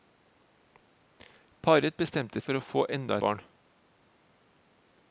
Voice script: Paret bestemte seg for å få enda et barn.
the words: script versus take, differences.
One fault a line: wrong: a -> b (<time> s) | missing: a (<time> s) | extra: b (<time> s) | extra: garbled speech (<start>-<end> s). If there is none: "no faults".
missing: seg (2.4 s)
missing: et (3.2 s)